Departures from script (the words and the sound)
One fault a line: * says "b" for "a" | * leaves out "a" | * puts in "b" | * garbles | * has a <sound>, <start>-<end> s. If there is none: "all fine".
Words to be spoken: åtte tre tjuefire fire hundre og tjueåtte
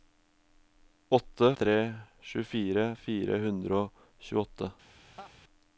* has a laugh, 5.2-5.3 s